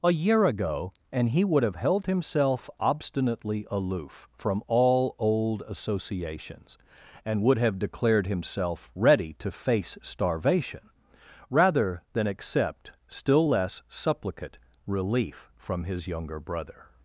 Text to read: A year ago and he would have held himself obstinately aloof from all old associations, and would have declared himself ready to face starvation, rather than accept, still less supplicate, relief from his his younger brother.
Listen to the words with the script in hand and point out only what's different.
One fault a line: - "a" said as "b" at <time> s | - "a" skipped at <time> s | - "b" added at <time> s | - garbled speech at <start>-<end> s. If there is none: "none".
- "his" skipped at 16.1 s